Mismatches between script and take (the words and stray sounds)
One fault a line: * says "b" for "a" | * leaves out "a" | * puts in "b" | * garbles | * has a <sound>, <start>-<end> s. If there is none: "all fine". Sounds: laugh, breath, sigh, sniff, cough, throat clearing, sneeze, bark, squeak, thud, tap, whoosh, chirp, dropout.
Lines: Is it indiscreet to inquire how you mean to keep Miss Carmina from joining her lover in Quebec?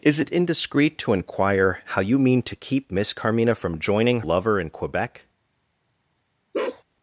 * leaves out "her"
* has a bark, 6.5-6.8 s